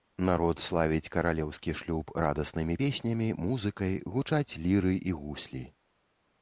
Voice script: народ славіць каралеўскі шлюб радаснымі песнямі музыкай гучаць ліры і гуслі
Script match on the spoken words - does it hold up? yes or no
yes